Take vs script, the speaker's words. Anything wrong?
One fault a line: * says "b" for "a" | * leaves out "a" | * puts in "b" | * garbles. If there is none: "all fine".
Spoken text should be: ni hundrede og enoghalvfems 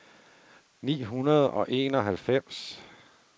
all fine